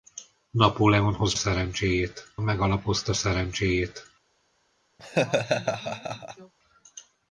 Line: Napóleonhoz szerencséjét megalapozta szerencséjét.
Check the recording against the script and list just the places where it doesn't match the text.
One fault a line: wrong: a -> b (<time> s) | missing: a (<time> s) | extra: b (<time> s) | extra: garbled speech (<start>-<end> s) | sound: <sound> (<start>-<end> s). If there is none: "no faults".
sound: laugh (5.0-6.5 s)